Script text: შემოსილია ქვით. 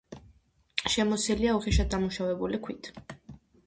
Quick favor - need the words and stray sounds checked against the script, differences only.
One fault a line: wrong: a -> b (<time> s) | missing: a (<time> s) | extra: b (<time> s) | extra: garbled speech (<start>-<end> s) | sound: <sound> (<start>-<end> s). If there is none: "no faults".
extra: უხეშად დამუშავებული (1.6 s)